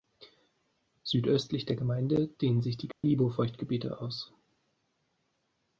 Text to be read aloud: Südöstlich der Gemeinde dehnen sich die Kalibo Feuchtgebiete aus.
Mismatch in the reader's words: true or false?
false